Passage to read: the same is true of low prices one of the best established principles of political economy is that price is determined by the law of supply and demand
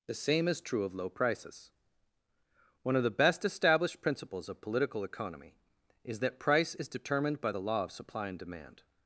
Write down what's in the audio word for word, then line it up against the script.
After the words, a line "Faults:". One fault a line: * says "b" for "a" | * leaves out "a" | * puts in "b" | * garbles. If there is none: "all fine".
the same is true of low prices one of the best established principles of political economy is that price is determined by the law of supply and demand
Faults:
all fine